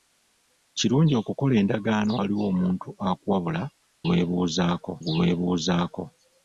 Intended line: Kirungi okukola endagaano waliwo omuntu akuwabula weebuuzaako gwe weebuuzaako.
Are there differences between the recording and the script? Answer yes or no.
no